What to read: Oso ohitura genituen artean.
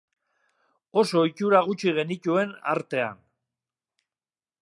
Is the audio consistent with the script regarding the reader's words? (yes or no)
no